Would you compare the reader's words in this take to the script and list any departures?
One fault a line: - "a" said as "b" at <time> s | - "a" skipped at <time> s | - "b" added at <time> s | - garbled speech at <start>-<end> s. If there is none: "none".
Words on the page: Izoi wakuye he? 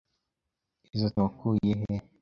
none